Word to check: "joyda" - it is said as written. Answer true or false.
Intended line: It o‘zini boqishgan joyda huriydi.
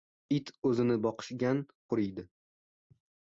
false